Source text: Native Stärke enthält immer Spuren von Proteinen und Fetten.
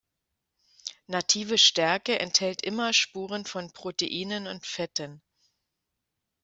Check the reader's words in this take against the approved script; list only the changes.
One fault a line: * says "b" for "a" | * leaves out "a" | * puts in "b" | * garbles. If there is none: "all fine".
all fine